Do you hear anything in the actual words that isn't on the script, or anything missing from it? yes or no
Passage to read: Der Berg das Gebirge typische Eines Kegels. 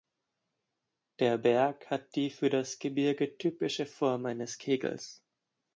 yes